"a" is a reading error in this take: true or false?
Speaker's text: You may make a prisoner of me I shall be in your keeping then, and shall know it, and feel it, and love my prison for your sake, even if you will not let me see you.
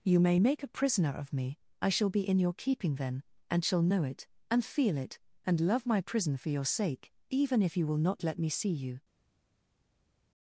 false